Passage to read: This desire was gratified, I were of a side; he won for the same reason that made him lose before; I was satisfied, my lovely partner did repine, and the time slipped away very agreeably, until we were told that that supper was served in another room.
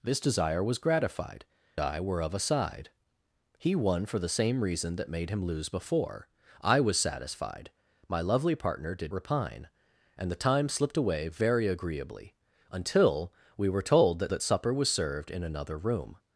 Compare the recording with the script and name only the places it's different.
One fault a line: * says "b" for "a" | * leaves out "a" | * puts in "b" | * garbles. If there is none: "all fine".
all fine